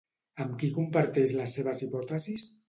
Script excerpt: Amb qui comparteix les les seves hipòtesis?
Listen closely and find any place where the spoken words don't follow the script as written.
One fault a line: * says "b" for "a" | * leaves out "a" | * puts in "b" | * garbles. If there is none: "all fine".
* leaves out "les"